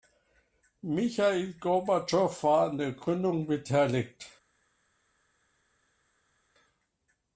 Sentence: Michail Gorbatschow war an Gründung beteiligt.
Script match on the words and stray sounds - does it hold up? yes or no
no